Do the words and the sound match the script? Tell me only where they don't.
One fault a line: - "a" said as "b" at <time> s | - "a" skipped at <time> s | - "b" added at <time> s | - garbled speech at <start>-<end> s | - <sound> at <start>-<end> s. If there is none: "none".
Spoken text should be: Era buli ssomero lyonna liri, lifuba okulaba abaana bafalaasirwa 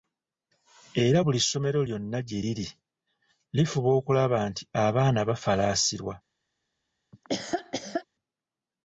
- "gye" added at 2.3 s
- "nti" added at 4.5 s
- laugh at 7.1-8.1 s